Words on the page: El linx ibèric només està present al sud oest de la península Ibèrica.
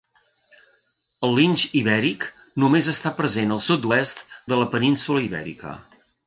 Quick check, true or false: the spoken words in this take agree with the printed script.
true